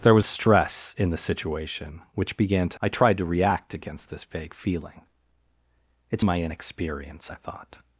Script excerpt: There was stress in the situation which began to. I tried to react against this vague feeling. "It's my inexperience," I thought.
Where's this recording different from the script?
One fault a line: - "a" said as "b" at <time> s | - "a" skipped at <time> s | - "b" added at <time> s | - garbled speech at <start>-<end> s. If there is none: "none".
none